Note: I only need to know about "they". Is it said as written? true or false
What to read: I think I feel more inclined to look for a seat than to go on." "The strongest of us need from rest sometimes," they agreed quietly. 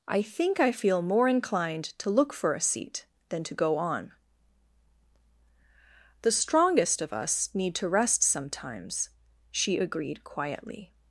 false